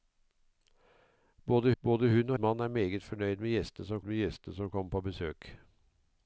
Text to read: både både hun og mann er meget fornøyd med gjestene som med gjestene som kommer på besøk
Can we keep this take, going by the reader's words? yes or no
yes